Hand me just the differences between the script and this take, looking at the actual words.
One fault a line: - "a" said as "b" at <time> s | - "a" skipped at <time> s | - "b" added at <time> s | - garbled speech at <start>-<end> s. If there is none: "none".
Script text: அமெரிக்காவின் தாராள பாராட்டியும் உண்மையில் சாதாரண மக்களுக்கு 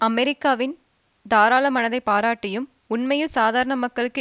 - "மனதை" added at 1.7 s